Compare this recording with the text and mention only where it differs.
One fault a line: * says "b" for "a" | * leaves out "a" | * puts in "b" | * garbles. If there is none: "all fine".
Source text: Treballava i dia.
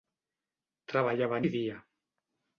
all fine